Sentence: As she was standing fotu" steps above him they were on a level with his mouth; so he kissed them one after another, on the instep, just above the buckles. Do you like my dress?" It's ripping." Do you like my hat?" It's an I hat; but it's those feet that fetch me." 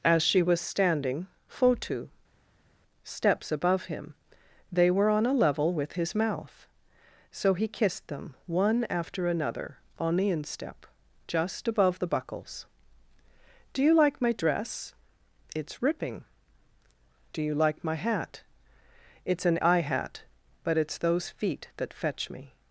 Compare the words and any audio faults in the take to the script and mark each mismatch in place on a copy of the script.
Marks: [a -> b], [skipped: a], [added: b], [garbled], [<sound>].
As she was standing fotu" steps above him they were on a level with his mouth; so he kissed them one after another, on the instep, just above the buckles. Do you like my dress?" It's ripping." Do you like my hat?" It's an I hat; but it's those feet that fetch me."